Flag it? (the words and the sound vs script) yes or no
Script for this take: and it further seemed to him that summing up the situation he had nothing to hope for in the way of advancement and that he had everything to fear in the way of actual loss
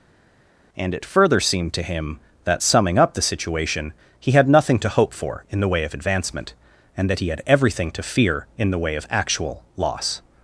no